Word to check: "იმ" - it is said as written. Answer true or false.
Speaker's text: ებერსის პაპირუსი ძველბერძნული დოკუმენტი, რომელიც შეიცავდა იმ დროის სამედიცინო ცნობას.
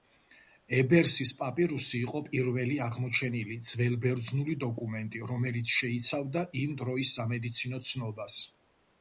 true